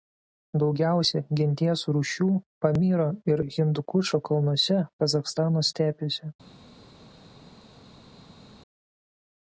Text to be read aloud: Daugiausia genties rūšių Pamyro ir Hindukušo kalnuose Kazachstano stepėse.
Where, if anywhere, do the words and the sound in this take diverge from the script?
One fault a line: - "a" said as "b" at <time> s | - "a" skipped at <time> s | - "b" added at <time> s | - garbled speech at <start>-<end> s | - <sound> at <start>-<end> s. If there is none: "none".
none